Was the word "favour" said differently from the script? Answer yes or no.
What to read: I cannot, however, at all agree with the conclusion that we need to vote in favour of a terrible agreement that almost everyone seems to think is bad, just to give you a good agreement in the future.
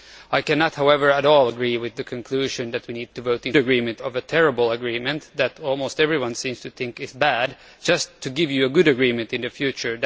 yes